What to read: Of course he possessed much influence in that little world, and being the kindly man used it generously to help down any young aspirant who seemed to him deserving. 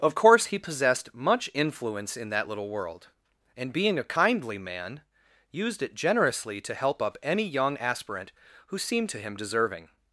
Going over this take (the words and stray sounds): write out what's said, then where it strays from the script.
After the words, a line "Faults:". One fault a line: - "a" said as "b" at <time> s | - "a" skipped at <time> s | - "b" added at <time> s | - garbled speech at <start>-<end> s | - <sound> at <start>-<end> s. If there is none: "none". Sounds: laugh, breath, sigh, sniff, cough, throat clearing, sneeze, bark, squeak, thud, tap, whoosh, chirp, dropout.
Of course he possessed much influence in that little world, and being a kindly man used it generously to help up any young aspirant who seemed to him deserving.
Faults:
- "the" said as "a" at 4.0 s
- "down" said as "up" at 7.0 s